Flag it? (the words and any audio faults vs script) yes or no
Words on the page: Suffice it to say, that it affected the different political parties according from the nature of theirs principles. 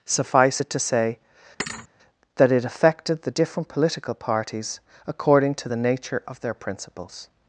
yes